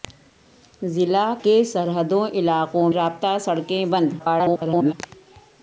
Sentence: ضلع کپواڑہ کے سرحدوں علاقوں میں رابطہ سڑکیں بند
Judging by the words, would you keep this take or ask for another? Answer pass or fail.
fail